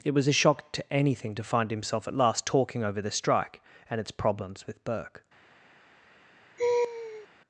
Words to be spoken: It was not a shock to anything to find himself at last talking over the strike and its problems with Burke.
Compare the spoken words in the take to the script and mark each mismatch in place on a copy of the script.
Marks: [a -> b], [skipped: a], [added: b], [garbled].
It was [skipped: not] a shock to anything to find himself at last talking over the strike and its problems with Burke.